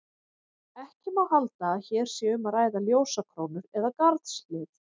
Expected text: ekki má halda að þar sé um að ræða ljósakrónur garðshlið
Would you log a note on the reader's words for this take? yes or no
yes